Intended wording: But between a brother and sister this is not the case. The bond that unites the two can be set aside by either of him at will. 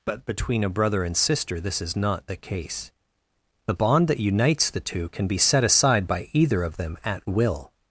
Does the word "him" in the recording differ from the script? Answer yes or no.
yes